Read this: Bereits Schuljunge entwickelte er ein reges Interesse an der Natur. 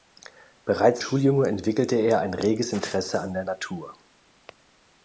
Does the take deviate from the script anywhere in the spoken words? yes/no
no